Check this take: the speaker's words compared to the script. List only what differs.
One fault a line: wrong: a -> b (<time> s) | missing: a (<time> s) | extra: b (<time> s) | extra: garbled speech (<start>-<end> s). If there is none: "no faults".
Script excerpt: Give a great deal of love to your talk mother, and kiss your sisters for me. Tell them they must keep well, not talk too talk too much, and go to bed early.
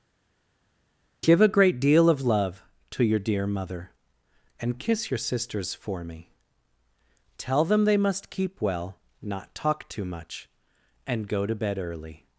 wrong: talk -> dear (3.2 s)
missing: talk too (10.0 s)